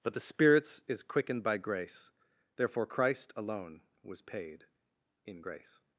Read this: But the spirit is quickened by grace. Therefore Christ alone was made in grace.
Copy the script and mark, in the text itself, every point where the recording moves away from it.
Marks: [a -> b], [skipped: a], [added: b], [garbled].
But the [spirit -> spirits] is quickened by grace. Therefore Christ alone was [made -> paid] in grace.